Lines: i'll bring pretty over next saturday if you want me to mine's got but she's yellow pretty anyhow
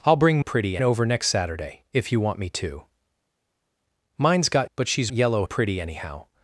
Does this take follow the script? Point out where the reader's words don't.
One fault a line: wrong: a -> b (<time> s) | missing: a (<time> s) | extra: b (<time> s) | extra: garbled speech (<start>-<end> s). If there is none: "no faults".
no faults